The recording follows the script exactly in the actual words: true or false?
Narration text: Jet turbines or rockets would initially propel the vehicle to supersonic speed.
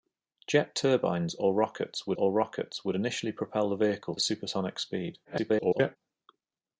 false